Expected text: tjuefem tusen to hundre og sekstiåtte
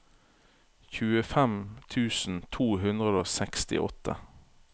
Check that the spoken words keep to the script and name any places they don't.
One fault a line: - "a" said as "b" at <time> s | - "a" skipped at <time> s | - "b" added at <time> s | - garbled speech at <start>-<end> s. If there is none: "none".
none